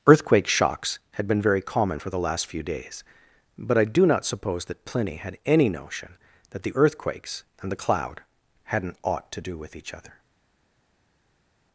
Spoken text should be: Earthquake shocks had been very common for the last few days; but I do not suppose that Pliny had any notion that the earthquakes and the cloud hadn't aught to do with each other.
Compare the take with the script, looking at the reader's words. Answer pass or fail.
pass